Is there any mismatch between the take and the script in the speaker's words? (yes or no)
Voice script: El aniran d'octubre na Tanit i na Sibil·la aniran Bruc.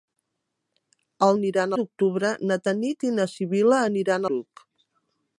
no